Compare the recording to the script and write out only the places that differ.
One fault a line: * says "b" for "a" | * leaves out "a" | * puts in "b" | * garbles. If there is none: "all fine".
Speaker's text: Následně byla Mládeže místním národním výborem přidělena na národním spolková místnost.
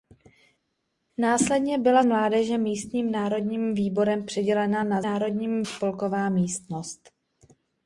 all fine